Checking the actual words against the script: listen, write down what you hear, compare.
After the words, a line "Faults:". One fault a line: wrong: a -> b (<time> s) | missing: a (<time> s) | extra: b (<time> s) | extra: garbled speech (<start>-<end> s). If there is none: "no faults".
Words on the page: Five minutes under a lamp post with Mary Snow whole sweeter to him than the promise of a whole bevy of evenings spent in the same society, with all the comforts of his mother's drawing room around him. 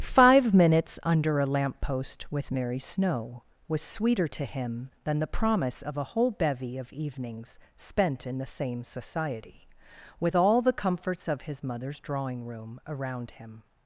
Five minutes under a lamp post with Mary Snow was sweeter to him than the promise of a whole bevy of evenings spent in the same society, with all the comforts of his mother's drawing room around him.
Faults:
wrong: whole -> was (3.7 s)